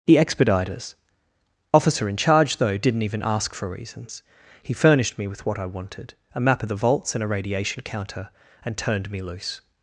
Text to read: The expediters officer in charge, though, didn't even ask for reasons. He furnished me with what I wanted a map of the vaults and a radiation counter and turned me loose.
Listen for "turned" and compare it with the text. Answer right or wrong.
right